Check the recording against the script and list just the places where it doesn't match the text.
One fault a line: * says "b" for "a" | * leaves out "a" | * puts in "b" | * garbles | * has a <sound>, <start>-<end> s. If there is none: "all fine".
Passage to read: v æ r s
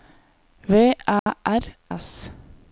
* has a dropout, 1.2-1.3 s